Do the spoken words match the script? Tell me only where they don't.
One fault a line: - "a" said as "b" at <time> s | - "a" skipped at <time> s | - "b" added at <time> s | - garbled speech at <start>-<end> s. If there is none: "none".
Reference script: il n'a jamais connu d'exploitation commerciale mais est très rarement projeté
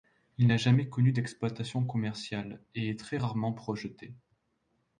- "mais" said as "et" at 2.7 s